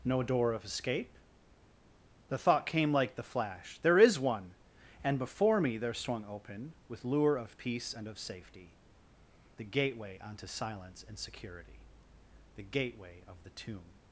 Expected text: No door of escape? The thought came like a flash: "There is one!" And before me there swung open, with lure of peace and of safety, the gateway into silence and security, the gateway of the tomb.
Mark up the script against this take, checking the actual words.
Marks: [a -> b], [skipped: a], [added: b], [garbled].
No door of escape? The thought came like [a -> the] flash: "There is one!" And before me there swung open, with lure of peace and of safety, the gateway [into -> onto] silence and security, the gateway of the tomb.